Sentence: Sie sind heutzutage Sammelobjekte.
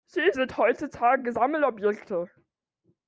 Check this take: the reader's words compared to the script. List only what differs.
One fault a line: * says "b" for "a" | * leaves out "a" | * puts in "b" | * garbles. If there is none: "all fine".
all fine